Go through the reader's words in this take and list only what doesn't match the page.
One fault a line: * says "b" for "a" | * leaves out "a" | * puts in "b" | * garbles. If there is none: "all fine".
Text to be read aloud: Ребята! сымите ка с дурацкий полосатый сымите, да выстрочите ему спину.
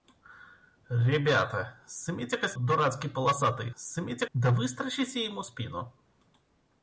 all fine